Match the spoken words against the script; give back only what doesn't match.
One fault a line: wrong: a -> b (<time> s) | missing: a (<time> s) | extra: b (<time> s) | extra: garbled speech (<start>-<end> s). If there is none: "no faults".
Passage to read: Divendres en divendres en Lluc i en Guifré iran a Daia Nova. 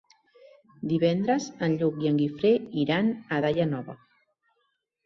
missing: divendres en (1.8 s)